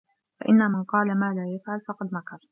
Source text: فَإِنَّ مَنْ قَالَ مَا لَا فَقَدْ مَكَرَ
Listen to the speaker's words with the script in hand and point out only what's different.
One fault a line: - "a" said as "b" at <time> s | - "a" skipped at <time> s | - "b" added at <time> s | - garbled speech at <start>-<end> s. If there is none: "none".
- "يَفْعَلُ" added at 1.5 s